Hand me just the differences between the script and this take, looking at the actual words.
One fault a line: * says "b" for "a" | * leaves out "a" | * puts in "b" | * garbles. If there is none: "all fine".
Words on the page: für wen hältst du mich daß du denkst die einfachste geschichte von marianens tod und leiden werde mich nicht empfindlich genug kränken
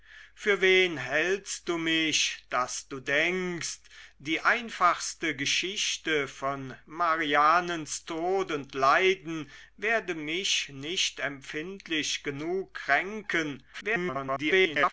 * garbles